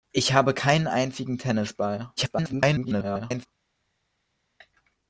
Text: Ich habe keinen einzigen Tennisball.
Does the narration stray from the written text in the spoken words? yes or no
yes